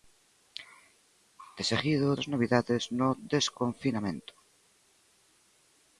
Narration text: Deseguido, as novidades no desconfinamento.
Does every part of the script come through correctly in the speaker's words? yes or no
yes